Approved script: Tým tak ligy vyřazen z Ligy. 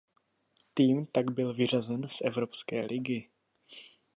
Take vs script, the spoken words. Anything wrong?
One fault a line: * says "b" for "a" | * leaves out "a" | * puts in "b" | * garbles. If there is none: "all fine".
* says "byl" for "ligy"
* puts in "Evropské"